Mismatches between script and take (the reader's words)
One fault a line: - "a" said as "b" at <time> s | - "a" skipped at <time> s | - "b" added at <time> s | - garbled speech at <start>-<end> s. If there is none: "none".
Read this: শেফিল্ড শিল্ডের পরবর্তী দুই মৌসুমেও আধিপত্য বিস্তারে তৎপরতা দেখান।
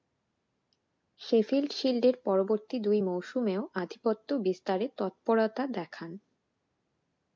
none